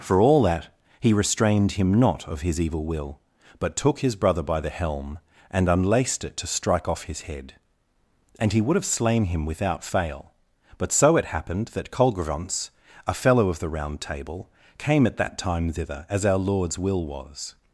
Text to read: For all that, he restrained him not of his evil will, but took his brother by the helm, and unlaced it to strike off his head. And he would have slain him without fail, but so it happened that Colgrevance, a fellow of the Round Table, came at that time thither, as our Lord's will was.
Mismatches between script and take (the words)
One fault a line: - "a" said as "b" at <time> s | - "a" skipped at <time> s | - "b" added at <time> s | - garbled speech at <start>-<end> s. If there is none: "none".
none